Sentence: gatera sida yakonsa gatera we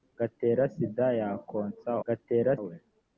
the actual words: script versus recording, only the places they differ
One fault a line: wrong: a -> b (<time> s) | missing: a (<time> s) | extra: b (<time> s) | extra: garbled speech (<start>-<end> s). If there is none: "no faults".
no faults